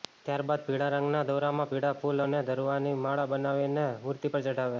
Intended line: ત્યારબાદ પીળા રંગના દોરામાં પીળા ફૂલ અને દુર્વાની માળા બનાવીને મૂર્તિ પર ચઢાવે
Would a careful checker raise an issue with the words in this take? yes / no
no